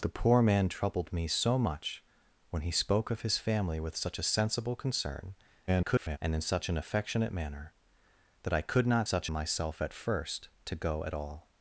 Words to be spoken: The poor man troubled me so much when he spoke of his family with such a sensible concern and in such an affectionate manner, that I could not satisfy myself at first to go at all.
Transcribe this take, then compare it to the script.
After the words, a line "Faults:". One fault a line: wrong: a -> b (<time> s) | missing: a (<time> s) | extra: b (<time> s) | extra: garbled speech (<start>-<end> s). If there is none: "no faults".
The poor man troubled me so much when he spoke of his family with such a sensible concern [garbled] and in such an affectionate manner, that I could not such myself at first to go at all.
Faults:
extra: garbled speech (5.7-6.2 s)
wrong: satisfy -> such (9.0 s)